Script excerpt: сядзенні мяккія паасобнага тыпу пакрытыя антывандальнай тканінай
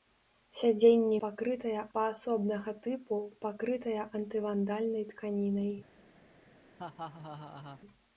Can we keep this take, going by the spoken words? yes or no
no